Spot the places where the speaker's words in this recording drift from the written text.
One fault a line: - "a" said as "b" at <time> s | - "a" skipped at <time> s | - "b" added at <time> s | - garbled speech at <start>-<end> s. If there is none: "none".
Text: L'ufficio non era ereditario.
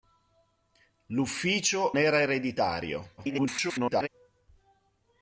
- "non" skipped at 1.9 s
- garbled speech at 3.2-4.1 s